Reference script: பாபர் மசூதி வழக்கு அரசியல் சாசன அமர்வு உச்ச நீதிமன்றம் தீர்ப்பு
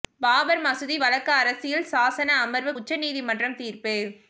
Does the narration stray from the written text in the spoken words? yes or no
no